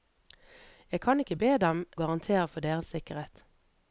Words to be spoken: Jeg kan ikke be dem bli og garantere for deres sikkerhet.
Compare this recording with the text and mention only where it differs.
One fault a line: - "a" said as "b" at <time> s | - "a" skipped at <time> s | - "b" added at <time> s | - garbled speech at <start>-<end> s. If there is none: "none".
- "bli og" skipped at 1.8 s